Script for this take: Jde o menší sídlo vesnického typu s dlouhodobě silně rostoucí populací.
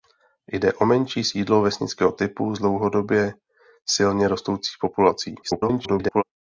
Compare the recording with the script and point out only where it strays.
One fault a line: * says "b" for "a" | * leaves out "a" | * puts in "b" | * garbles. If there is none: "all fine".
* garbles